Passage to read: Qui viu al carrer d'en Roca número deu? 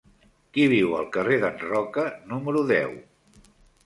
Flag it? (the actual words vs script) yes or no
no